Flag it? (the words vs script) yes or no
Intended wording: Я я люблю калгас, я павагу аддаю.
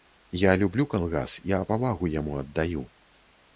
yes